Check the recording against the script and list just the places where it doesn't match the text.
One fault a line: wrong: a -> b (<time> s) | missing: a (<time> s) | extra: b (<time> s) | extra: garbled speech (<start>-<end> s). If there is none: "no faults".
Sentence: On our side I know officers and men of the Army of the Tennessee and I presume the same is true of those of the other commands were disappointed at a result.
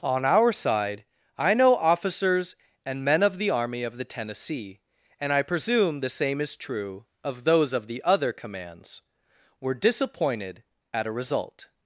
no faults